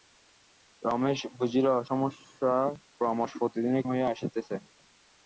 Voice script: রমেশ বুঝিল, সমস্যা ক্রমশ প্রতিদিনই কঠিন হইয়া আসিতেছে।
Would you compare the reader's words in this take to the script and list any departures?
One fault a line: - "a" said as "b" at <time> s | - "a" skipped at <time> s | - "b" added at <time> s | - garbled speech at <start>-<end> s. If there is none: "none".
- "কঠিন" skipped at 3.8 s